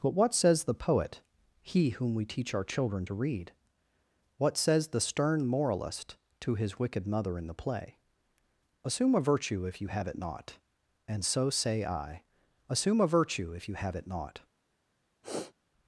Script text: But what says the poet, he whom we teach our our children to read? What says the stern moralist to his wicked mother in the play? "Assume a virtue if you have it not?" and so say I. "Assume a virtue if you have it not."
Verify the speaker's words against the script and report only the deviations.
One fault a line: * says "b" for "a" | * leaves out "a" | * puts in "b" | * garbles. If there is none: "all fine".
* leaves out "our"